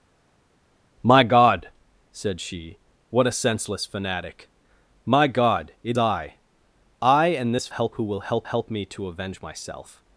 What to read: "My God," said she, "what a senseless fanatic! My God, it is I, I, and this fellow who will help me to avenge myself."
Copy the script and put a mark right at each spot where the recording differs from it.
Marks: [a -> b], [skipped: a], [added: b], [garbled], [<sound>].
"My God," said she, "what a senseless fanatic! My God, it [skipped: is] I, I, and this [fellow -> help] who will help [added: help] me to avenge myself."